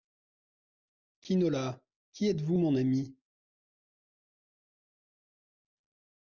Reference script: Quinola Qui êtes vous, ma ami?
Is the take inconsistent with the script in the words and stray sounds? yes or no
yes